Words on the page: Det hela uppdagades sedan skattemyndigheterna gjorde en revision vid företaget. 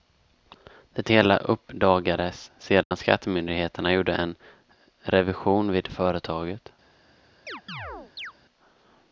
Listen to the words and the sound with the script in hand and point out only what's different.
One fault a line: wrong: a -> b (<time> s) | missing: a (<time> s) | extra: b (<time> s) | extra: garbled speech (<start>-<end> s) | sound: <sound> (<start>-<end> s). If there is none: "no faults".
sound: dropout (2.8-2.9 s)
sound: chirp (7.5-8.3 s)